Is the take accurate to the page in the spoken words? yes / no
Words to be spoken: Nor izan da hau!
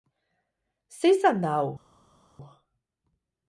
no